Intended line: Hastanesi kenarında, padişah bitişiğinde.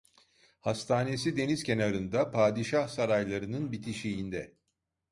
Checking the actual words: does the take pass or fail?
fail